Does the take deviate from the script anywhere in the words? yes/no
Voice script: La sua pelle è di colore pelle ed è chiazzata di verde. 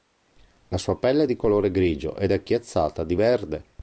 yes